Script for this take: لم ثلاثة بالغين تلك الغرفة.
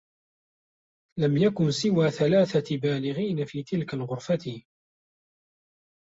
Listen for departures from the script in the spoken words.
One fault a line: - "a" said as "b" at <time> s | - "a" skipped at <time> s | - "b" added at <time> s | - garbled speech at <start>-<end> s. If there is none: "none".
- "يكن سوى" added at 1.4 s
- "في" added at 3.4 s